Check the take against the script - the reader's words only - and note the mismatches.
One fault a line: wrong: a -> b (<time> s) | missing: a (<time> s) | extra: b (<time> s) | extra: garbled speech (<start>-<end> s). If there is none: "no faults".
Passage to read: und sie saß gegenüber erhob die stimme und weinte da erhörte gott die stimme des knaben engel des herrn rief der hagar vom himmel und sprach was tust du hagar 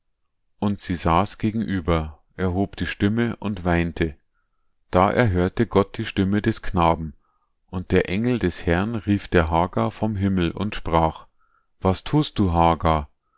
extra: und der (7.7 s)